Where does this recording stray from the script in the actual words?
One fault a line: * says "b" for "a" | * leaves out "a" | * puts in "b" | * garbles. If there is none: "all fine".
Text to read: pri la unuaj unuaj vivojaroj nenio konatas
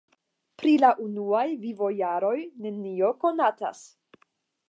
* leaves out "unuaj"